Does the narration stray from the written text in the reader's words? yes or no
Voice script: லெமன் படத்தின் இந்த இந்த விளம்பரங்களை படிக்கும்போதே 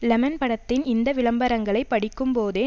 yes